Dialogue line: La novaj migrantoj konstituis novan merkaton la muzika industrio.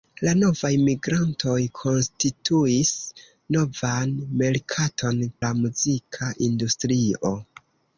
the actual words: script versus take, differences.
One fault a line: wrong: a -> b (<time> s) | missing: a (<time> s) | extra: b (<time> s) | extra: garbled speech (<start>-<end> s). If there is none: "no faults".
no faults